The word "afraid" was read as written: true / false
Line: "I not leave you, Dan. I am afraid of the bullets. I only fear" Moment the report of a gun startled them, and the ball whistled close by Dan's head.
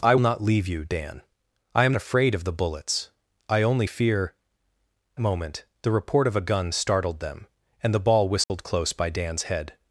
true